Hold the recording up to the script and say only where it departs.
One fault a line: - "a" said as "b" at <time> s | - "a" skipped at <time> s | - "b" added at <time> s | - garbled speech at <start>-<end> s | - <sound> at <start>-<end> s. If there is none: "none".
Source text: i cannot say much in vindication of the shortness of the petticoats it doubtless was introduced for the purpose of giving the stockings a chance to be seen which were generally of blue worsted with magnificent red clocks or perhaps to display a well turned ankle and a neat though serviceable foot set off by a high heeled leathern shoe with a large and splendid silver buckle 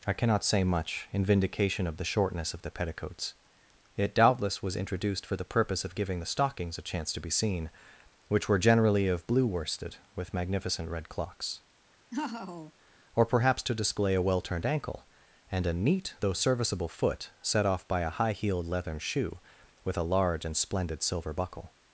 - laugh at 12.1-12.7 s